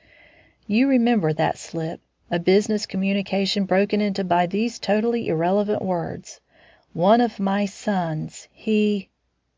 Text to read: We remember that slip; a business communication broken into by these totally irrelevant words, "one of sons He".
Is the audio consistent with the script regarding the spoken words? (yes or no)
no